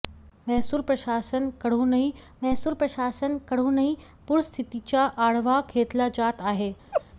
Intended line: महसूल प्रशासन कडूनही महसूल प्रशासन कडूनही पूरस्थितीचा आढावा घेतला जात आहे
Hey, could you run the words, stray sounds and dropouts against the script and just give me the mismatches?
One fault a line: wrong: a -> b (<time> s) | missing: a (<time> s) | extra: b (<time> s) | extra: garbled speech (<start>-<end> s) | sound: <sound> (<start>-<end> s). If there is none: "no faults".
sound: laugh (6.9-7.0 s)